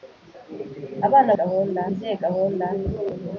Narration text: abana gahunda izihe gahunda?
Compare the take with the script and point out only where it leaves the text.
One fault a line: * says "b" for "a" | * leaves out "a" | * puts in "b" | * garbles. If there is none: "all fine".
all fine